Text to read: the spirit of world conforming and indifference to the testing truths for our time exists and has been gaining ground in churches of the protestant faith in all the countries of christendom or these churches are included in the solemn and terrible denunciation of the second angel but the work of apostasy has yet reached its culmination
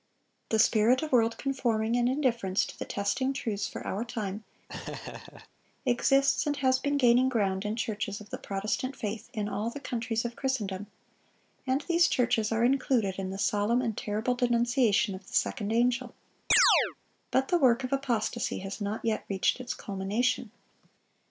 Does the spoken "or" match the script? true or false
false